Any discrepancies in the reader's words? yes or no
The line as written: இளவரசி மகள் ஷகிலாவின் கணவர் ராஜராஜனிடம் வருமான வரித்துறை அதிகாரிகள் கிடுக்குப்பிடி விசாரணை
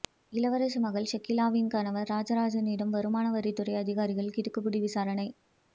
no